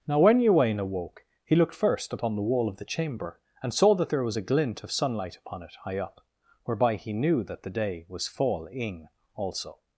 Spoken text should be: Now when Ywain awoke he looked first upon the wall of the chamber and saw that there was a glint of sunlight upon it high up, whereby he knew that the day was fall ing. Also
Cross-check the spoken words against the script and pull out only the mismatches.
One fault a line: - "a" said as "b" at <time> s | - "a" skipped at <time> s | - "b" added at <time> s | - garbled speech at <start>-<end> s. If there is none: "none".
none